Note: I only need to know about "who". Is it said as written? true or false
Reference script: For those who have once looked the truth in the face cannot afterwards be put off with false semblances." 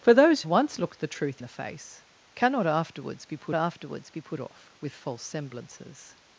false